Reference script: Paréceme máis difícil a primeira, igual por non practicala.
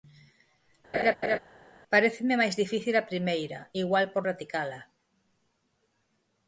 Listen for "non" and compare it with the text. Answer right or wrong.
wrong